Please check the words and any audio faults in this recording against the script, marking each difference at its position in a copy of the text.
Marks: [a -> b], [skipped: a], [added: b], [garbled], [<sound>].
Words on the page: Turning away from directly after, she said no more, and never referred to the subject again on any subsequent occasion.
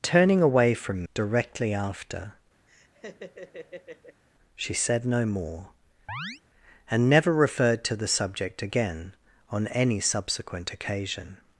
Turning away from directly after, [laugh] she said no more, [chirp] and never referred to the subject again on any subsequent occasion.